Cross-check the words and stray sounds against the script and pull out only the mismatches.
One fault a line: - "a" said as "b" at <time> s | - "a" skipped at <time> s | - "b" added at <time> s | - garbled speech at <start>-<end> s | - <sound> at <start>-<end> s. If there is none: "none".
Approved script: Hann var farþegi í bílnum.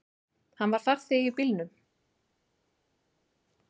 none